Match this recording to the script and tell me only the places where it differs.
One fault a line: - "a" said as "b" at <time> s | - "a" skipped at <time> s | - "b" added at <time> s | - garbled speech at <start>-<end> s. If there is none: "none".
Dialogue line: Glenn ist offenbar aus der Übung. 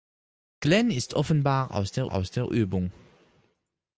- "aus der" added at 2.1 s